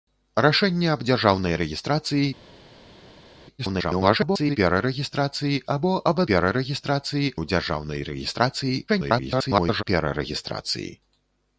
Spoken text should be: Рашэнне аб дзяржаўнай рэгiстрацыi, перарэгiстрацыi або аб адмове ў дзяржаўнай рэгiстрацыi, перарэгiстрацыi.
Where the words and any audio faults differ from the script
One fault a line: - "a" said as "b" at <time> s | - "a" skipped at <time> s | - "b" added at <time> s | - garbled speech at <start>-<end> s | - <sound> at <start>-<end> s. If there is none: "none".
- garbled speech at 3.6-4.6 s
- "адмове" said as "перарэгiстрацыi" at 6.3 s
- garbled speech at 8.9-9.8 s